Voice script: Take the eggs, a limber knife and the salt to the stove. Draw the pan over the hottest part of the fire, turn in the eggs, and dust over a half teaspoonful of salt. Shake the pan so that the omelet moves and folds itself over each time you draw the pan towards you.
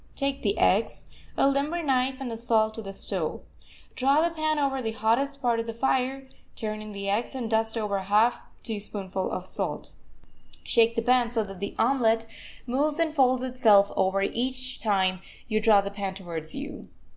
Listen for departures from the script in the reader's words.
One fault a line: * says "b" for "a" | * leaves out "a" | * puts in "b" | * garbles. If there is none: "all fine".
all fine